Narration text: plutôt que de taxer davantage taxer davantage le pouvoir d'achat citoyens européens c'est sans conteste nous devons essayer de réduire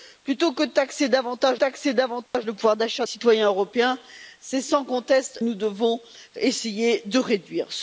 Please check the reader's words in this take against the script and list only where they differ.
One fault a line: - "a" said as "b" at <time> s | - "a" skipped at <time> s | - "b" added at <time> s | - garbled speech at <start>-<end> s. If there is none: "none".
none